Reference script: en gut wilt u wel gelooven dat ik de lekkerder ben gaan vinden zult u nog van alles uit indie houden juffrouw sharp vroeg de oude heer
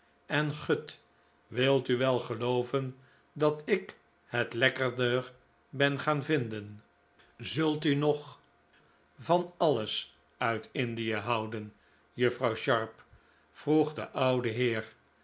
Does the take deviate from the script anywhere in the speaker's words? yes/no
yes